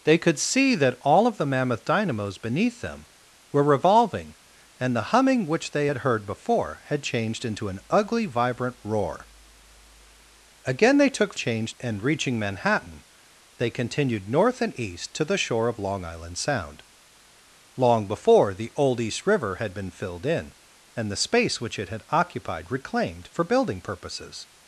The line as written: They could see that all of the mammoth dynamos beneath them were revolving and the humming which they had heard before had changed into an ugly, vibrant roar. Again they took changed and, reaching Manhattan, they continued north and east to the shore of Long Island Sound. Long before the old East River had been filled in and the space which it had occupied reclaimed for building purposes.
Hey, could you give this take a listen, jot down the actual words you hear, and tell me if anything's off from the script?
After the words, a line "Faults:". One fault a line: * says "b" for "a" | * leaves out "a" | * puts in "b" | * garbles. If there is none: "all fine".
They could see that all of the mammoth dynamos beneath them were revolving and the humming which they had heard before had changed into an ugly, vibrant roar. Again they took changed and, reaching Manhattan, they continued north and east to the shore of Long Island Sound. Long before the old East River had been filled in and the space which it had occupied reclaimed for building purposes.
Faults:
all fine